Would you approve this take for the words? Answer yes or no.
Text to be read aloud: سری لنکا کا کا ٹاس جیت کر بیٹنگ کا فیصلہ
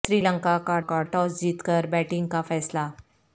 yes